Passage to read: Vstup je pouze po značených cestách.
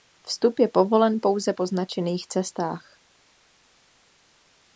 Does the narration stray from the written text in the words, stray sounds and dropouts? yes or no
yes